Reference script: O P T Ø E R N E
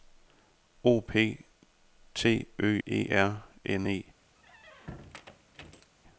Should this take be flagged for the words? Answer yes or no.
no